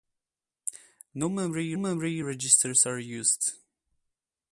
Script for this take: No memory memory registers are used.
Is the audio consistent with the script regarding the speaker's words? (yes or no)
yes